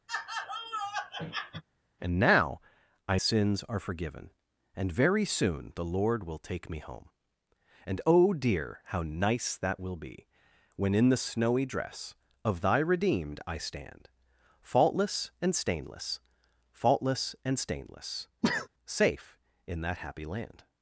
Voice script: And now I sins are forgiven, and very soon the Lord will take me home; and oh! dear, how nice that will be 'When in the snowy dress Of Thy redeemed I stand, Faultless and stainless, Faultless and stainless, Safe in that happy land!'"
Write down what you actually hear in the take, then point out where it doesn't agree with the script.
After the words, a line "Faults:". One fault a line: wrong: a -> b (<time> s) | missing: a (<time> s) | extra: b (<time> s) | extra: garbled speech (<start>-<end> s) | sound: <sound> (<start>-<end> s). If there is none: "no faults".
And now I sins are forgiven, and very soon the Lord will take me home; and oh! dear, how nice that will be 'When in the snowy dress Of Thy redeemed I stand, Faultless and stainless, Faultless and stainless, Safe in that happy land!'"
Faults:
sound: laugh (0.1-1.6 s)
sound: sneeze (18.4-18.7 s)